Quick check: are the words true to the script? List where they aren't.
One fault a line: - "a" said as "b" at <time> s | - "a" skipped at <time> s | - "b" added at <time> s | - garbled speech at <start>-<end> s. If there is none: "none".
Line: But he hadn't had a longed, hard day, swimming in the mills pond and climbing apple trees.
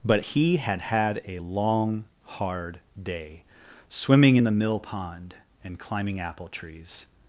- "hadn't" said as "had" at 0.6 s
- "longed" said as "long" at 1.4 s
- "mills" said as "mill" at 4.5 s